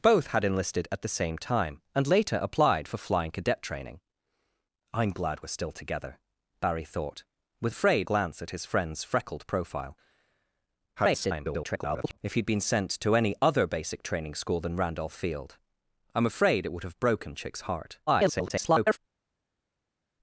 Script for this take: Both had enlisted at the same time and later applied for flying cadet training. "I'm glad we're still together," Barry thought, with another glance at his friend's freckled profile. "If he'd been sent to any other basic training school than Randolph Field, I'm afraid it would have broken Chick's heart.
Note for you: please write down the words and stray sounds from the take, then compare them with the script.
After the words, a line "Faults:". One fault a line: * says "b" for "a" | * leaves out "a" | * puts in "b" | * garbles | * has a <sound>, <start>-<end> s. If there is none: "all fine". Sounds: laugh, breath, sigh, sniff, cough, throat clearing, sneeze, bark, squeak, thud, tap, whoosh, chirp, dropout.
Both had enlisted at the same time and later applied for flying cadet training. "I'm glad we're still together," Barry thought, with afraid glance at his friend's freckled profile. [garbled] "If he'd been sent to any other basic training school than Randolph Field, I'm afraid it would have broken Chick's heart. [garbled]
Faults:
* says "afraid" for "another"
* garbles
* garbles